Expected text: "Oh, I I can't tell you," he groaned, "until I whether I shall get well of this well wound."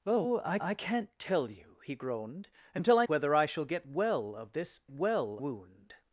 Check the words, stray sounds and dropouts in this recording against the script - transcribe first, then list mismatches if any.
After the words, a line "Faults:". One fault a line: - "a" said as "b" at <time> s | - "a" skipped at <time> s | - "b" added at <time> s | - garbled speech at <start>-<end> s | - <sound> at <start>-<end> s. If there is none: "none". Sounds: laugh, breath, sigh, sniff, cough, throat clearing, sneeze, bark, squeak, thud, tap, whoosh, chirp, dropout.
"Oh, I I can't tell you," he groaned, "until I whether I shall get well of this well wound."
Faults:
none